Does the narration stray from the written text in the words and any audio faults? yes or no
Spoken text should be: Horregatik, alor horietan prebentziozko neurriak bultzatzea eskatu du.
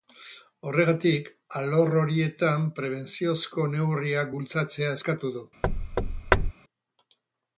yes